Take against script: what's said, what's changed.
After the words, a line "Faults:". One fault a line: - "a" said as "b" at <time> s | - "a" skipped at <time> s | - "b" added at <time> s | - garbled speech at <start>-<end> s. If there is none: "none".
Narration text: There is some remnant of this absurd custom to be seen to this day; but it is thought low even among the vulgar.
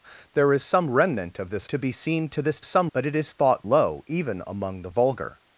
There is some remnant of this to be seen to this some; but it is thought low even among the vulgar.
Faults:
- "absurd custom" skipped at 1.7 s
- "day" said as "some" at 2.6 s